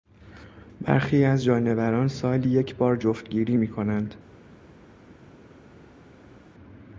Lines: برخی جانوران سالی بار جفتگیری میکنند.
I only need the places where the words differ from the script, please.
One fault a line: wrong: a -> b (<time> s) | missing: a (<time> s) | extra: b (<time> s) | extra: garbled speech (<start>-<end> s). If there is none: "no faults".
extra: از (1.2 s)
extra: یک (2.5 s)